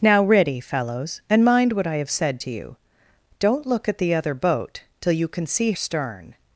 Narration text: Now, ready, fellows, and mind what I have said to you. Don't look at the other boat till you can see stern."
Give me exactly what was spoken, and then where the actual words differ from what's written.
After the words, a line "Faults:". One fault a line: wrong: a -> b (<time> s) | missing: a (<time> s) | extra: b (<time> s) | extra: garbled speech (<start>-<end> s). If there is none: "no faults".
Now, ready, fellows, and mind what I have said to you. Don't look at the other boat till you can see stern."
Faults:
no faults